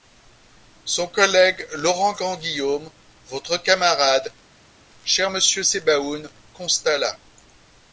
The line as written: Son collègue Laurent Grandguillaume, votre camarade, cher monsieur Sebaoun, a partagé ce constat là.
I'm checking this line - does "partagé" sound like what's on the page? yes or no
no